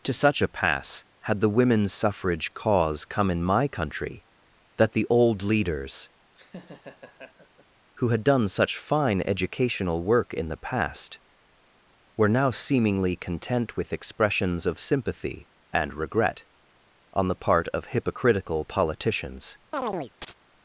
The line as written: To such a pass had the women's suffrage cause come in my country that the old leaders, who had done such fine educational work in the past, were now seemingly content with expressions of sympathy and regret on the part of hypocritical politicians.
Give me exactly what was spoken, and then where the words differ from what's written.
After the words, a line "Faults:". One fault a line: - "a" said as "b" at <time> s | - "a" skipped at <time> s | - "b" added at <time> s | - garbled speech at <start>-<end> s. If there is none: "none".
To such a pass had the women's suffrage cause come in my country that the old leaders, who had done such fine educational work in the past, were now seemingly content with expressions of sympathy and regret on the part of hypocritical politicians.
Faults:
none